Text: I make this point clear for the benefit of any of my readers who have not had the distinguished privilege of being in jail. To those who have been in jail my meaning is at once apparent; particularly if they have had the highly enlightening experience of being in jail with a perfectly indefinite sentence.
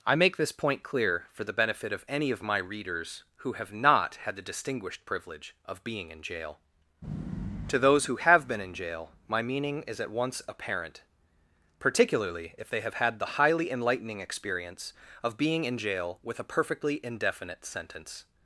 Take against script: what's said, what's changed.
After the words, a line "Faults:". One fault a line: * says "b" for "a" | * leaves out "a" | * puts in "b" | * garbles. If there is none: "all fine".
I make this point clear for the benefit of any of my readers who have not had the distinguished privilege of being in jail. To those who have been in jail my meaning is at once apparent; particularly if they have had the highly enlightening experience of being in jail with a perfectly indefinite sentence.
Faults:
all fine